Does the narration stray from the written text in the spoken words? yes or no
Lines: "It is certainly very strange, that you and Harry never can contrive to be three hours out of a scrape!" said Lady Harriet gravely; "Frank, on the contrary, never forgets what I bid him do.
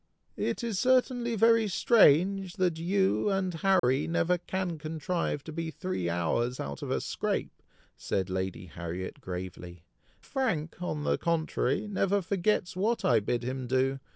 no